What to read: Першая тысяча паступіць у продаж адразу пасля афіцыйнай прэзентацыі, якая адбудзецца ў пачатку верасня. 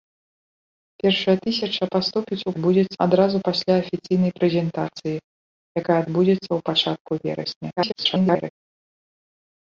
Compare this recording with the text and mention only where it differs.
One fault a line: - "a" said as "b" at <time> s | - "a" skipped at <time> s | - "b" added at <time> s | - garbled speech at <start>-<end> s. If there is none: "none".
- "продаж" said as "адбудзецца" at 2.5 s
- garbled speech at 7.8-8.5 s